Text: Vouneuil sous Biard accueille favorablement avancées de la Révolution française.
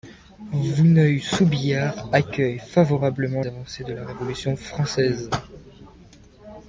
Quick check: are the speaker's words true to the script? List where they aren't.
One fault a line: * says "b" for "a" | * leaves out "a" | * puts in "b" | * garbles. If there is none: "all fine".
all fine